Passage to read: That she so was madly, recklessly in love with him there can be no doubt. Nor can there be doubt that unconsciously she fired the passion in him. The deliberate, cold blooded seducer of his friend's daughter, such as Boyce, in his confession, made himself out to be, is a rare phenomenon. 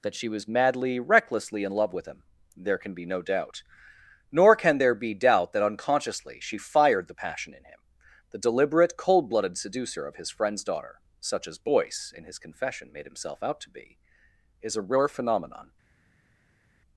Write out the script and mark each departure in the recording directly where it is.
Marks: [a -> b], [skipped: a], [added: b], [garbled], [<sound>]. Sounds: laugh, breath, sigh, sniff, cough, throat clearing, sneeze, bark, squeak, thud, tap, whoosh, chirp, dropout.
That she [skipped: so] was madly, recklessly in love with him there can be no doubt. Nor can there be doubt that unconsciously she fired the passion in him. The deliberate, cold blooded seducer of his friend's daughter, such as Boyce, in his confession, made himself out to be, is a rare phenomenon.